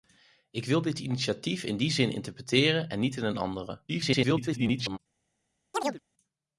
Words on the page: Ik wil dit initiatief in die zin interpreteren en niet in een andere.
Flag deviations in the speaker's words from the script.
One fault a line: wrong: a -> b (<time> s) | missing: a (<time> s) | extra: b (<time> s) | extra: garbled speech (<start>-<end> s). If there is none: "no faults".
extra: garbled speech (3.9-5.0 s)